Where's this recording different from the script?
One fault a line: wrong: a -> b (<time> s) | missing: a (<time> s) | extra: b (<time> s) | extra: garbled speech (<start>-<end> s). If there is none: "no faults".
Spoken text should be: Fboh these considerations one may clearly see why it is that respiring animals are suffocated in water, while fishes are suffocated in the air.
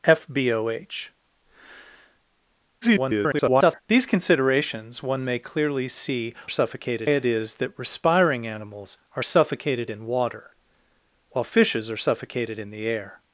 extra: garbled speech (2.8-3.8 s)
wrong: why -> suffocated (6.5 s)